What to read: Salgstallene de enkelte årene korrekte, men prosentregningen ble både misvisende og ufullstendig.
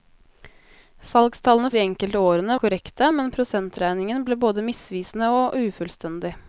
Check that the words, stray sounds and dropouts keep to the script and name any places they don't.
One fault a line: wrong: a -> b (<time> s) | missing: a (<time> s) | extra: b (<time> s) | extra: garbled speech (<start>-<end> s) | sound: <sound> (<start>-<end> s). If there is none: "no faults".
no faults